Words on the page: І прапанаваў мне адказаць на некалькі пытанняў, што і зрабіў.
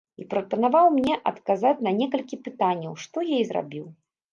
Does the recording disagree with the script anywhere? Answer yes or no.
yes